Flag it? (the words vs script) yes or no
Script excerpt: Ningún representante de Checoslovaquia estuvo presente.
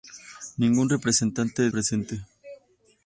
yes